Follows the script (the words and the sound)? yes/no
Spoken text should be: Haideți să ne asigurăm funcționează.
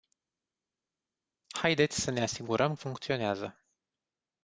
yes